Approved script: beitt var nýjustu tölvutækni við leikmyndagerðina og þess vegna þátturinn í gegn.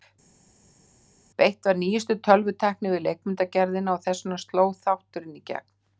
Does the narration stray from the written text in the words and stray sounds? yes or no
yes